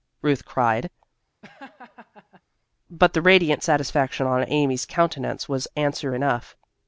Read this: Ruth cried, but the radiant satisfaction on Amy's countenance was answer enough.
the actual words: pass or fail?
pass